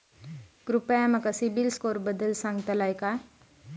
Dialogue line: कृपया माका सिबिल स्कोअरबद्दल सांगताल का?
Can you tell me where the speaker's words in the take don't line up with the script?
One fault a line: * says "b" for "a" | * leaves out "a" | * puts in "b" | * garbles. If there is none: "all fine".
all fine